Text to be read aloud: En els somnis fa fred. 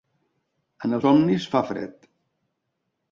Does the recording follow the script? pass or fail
pass